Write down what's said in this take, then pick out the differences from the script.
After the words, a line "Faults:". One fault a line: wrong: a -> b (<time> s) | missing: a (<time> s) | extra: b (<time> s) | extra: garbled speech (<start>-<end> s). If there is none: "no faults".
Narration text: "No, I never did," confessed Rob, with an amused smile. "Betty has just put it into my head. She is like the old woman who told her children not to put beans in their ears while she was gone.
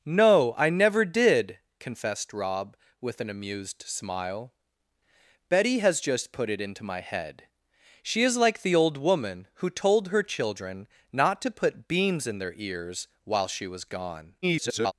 "No, I never did," confessed Rob, with an amused smile. "Betty has just put it into my head. She is like the old woman who told her children not to put beans in their ears while she was gone. [garbled]
Faults:
extra: garbled speech (14.4-14.9 s)